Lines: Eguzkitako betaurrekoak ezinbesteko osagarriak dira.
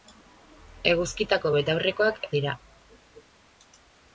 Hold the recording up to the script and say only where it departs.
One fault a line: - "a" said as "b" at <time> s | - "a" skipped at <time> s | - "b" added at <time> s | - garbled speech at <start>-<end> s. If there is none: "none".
- "ezinbesteko osagarriak" skipped at 2.2 s